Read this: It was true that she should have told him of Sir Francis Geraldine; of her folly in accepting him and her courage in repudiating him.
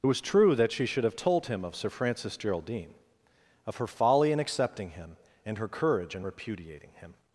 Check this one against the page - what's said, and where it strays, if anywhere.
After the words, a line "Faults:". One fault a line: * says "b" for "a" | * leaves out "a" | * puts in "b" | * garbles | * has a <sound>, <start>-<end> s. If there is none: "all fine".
It was true that she should have told him of Sir Francis Geraldine; of her folly in accepting him and her courage in repudiating him.
Faults:
all fine